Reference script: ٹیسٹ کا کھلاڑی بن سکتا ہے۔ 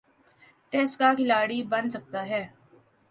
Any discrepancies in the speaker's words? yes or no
no